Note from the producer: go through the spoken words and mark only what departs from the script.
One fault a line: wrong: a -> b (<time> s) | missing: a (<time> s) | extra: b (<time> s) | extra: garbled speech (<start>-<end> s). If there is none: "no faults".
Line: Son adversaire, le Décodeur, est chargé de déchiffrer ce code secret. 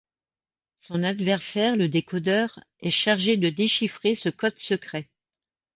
no faults